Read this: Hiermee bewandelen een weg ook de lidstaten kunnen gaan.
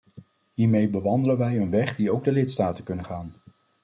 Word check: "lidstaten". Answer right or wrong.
right